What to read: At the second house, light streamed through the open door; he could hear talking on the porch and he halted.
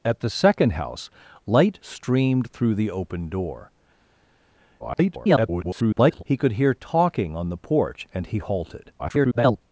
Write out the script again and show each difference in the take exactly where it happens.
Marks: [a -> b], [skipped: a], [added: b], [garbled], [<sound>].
At the second house, light streamed through the open door; [garbled] he could hear talking on the porch and he halted. [garbled]